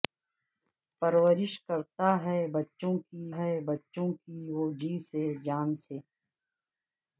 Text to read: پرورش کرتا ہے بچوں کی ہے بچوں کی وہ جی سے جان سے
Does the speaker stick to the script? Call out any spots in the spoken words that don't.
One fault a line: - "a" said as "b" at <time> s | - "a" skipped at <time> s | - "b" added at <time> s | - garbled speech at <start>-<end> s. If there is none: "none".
none